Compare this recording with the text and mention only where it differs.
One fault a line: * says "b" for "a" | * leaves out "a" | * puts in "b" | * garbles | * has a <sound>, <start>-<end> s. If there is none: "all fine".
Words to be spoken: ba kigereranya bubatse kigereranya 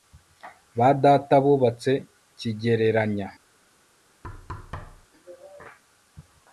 * says "data" for "kigereranya"
* has a thud, 4.2-5.1 s